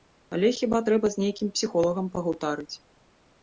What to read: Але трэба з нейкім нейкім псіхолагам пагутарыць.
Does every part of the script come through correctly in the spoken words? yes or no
no